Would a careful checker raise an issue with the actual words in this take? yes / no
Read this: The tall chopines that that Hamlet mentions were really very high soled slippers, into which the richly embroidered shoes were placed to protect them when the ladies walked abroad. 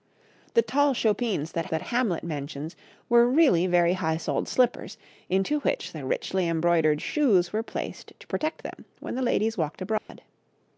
no